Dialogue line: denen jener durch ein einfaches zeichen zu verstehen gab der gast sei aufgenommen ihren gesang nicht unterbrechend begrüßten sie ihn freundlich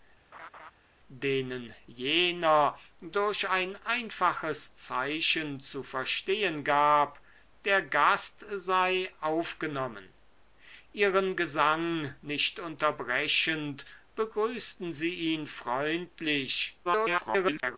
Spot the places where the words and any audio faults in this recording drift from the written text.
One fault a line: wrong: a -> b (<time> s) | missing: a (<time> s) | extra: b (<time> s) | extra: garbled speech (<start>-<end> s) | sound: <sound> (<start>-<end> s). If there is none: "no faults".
sound: laugh (0.3-0.7 s)
extra: garbled speech (16.8-17.8 s)